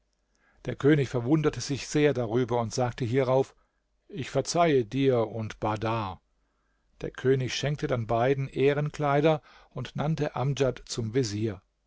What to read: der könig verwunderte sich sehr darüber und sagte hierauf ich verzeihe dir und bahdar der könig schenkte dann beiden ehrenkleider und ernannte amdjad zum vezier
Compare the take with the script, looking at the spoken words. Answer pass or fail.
pass